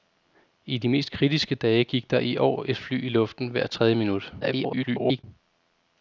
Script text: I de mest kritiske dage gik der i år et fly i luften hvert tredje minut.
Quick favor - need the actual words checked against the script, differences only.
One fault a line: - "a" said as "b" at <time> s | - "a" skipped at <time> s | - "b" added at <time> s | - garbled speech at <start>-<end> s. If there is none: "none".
- garbled speech at 4.4-5.2 s